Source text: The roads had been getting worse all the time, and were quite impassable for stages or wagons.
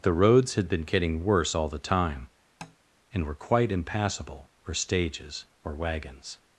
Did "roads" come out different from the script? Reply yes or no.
no